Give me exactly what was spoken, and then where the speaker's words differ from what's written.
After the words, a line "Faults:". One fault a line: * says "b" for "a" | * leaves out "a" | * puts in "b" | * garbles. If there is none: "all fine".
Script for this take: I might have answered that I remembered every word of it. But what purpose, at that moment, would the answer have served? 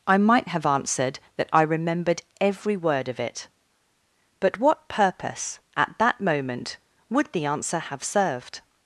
I might have answered that I remembered every word of it. But what purpose, at that moment, would the answer have served?
Faults:
all fine